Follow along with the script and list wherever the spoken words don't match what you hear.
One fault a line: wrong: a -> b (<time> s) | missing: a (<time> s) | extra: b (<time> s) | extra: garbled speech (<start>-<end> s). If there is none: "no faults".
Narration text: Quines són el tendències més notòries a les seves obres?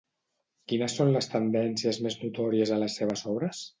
wrong: el -> les (1.2 s)